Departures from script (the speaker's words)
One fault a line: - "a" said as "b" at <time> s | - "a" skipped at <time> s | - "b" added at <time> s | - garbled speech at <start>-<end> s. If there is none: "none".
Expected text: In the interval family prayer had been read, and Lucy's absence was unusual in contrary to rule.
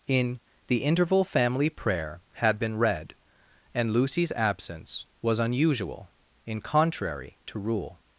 none